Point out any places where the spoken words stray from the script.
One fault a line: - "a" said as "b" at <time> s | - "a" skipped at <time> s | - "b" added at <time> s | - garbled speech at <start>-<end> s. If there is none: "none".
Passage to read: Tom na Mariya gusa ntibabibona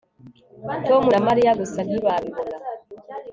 none